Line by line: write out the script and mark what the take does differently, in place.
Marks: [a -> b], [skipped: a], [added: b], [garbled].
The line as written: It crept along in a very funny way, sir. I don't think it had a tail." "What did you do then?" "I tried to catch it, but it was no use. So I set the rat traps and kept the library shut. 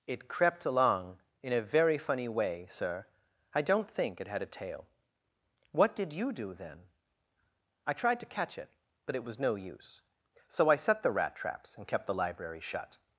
It crept along in a very funny way, sir. I don't think it had a tail." "What did you do then?" "I tried to catch it, but it was no use. So I set the rat traps and kept the library shut.